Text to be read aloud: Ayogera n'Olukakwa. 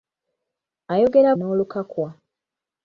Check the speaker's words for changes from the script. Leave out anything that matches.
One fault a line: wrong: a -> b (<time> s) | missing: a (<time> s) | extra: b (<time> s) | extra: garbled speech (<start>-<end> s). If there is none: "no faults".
no faults